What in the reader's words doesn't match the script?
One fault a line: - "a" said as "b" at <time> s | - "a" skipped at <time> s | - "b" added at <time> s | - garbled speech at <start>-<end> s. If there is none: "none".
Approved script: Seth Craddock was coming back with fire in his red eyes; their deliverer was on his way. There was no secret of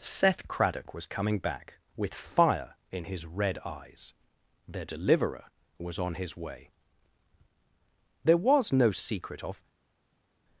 none